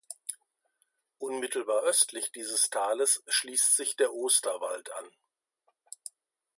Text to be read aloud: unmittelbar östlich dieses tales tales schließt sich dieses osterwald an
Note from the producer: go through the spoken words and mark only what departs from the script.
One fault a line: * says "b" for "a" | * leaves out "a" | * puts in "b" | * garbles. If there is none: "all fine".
* leaves out "tales"
* says "der" for "dieses"